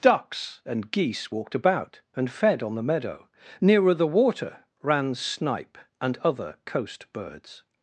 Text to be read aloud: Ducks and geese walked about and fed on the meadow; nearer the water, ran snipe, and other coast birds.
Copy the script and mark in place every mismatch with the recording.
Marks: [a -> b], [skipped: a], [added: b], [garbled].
Ducks and geese walked about and fed on the meadow; nearer the water, ran snipe, and other coast birds.